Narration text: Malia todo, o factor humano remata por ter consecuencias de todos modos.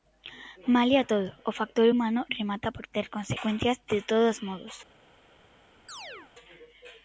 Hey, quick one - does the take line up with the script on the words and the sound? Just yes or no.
no